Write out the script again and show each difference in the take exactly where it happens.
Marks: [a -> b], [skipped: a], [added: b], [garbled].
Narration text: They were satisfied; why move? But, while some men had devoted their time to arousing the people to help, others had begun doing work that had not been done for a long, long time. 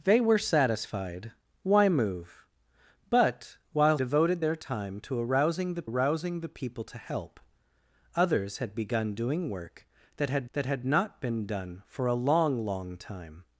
They were satisfied; why move? But, while [skipped: some men had] devoted their time to arousing the [added: arousing the] people to help, others had begun doing work that had [added: that had] not been done for a long, long time.